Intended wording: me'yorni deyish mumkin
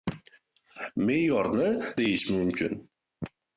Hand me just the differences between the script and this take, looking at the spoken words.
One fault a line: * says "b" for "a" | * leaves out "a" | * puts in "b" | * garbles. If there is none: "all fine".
all fine